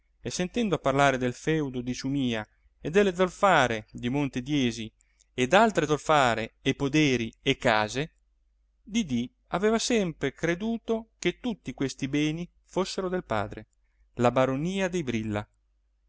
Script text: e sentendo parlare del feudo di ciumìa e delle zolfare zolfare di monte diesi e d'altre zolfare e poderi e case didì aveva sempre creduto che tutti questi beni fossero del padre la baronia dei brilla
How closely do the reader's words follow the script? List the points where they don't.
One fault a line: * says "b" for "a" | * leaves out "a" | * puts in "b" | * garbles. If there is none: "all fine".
* leaves out "zolfare"